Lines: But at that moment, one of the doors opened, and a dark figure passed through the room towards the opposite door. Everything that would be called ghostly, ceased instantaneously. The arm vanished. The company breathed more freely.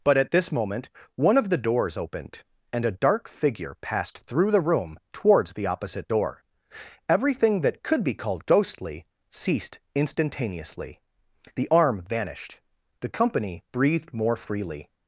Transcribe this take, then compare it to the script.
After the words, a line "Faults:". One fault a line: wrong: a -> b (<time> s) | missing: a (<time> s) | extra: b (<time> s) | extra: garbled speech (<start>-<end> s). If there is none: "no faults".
But at this moment, one of the doors opened, and a dark figure passed through the room towards the opposite door. Everything that could be called ghostly, ceased instantaneously. The arm vanished. The company breathed more freely.
Faults:
wrong: that -> this (0.3 s)
wrong: would -> could (7.8 s)